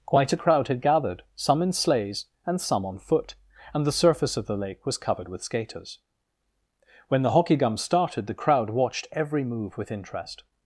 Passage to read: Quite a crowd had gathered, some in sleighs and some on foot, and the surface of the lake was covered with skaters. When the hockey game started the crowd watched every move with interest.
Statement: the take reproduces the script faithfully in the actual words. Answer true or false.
false